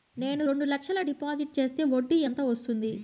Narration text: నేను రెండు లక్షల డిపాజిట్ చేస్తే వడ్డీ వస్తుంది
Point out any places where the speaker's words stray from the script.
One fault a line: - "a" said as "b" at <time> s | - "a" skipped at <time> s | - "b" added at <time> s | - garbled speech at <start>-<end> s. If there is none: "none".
- "ఎంత" added at 2.3 s